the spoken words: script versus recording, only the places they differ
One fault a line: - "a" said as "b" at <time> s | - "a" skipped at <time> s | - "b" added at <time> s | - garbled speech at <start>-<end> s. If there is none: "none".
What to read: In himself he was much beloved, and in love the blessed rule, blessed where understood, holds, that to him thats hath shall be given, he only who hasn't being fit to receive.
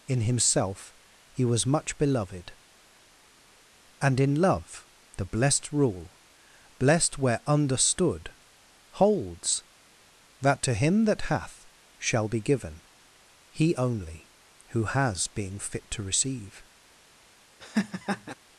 - "thats" said as "that" at 11.1 s
- "hasn't" said as "has" at 14.8 s